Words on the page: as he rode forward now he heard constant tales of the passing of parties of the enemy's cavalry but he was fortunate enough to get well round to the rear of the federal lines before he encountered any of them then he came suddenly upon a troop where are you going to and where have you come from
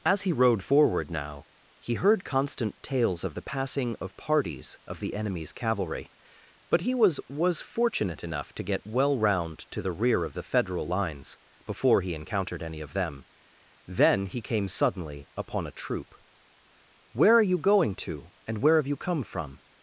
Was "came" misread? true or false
false